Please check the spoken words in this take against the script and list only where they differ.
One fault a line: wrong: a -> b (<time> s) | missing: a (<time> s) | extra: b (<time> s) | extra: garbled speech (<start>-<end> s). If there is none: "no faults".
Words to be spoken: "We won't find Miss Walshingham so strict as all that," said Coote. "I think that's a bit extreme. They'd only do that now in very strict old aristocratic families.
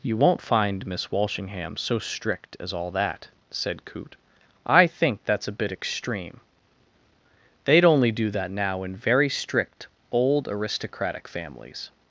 wrong: We -> You (0.0 s)